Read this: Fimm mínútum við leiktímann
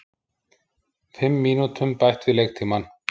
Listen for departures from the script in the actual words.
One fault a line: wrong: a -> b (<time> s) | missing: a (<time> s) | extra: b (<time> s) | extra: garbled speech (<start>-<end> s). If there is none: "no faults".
extra: bætt (2.0 s)